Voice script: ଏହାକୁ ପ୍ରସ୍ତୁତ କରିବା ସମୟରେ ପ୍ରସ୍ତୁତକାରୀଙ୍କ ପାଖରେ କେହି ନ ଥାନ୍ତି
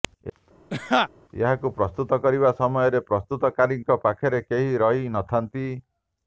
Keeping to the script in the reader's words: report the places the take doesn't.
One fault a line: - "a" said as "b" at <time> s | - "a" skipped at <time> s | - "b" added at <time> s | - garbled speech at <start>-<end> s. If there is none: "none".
- "ରହି" added at 4.8 s